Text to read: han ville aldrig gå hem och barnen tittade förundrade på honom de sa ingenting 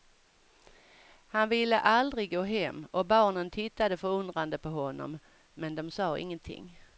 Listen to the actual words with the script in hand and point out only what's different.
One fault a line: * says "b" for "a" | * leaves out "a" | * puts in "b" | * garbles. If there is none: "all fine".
* puts in "men"